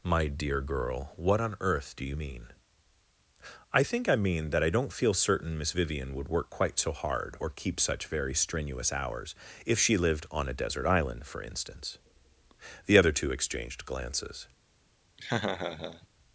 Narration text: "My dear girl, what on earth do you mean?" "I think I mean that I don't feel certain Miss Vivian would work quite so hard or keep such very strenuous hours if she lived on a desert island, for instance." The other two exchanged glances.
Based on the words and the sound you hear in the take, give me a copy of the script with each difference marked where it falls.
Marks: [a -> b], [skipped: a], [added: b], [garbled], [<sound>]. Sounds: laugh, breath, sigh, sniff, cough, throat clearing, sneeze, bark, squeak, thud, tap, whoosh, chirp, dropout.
"My dear girl, what on earth do you mean?" "I think I mean that I don't feel certain Miss Vivian would work quite so hard or keep such very strenuous hours if she lived on a desert island, for instance." The other two exchanged glances. [laugh]